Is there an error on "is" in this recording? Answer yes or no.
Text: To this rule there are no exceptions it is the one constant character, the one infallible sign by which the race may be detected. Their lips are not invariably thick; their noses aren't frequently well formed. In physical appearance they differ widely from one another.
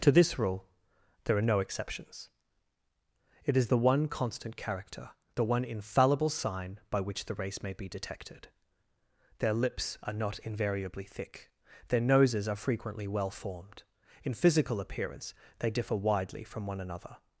no